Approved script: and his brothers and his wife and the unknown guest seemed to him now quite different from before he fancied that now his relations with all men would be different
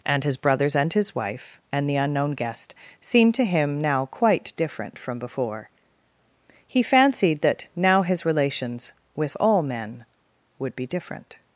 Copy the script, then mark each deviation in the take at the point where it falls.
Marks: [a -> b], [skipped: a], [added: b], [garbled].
and his brothers and his wife and the unknown guest seemed to him now quite different from before he fancied that now his relations with all men would be different